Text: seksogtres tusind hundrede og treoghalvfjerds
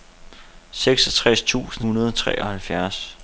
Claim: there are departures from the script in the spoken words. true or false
false